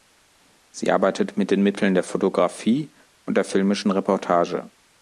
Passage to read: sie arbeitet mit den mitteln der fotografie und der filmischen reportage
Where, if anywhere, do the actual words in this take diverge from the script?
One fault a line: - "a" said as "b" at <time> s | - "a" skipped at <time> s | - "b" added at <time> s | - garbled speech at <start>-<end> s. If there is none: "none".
none